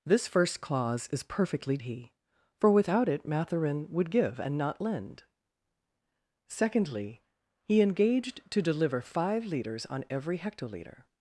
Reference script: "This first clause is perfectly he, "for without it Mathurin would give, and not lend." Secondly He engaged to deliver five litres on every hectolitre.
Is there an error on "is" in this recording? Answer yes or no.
no